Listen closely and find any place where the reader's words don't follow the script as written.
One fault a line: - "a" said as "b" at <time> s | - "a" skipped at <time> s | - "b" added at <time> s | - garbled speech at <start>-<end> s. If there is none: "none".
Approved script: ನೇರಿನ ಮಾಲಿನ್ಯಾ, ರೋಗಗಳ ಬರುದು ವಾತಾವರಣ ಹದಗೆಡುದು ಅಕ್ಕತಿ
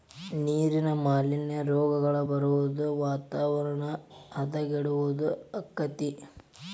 none